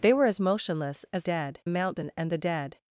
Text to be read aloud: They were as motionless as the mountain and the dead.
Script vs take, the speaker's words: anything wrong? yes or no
yes